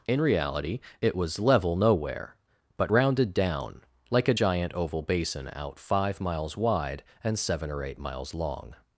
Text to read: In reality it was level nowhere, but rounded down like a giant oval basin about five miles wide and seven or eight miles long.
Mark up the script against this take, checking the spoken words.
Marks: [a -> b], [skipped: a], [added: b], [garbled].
In reality it was level nowhere, but rounded down like a giant oval basin [about -> out] five miles wide and seven or eight miles long.